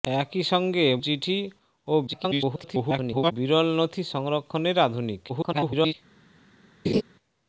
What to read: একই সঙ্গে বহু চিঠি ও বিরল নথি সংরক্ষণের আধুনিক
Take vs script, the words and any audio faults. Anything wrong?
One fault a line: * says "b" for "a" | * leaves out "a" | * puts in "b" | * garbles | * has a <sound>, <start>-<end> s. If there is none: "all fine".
* leaves out "বহু"
* garbles
* garbles
* has a laugh, 6.8-7.0 s